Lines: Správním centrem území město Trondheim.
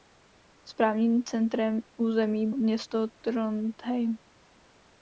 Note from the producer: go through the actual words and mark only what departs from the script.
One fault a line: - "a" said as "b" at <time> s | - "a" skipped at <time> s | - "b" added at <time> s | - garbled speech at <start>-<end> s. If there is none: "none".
none